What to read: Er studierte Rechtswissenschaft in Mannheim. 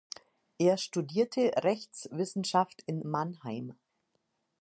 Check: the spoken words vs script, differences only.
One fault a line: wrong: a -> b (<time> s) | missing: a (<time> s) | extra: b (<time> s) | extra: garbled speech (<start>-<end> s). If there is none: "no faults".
no faults